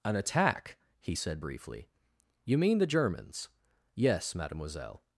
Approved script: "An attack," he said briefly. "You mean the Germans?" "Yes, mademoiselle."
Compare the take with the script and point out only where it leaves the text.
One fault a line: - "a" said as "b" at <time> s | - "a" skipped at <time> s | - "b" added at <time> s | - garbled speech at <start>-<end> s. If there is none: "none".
none